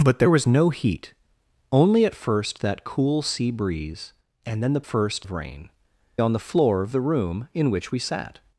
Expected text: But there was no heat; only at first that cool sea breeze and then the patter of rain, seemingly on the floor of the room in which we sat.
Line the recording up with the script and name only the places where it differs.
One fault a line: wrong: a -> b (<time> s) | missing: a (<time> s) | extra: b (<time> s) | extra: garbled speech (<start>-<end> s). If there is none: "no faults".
wrong: patter -> first (4.8 s)
missing: seemingly (5.7 s)